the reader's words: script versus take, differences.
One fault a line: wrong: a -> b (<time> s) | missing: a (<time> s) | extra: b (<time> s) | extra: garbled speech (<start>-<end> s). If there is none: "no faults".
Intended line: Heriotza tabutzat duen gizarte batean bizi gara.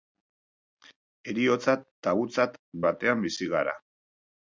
missing: duen gizarte (2.6 s)